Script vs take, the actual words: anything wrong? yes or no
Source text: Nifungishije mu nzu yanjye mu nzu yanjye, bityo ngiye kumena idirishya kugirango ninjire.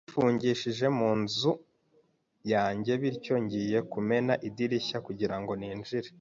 yes